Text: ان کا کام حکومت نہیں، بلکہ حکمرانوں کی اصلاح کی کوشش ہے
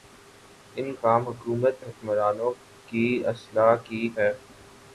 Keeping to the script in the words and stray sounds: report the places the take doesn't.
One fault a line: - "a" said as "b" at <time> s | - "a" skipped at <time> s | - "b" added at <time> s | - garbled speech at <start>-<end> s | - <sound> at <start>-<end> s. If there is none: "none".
- "کا" skipped at 0.9 s
- "نہیں بلکہ" skipped at 1.8 s
- "کوشش" skipped at 4.1 s